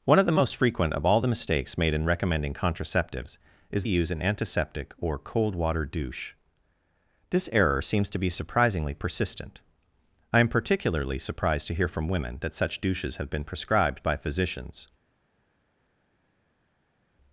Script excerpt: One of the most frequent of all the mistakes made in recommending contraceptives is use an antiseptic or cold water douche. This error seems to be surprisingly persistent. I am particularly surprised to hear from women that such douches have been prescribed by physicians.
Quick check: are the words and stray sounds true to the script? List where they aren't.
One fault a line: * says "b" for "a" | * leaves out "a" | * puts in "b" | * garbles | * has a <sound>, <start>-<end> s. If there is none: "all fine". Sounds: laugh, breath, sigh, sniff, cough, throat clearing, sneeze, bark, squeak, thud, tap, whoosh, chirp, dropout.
all fine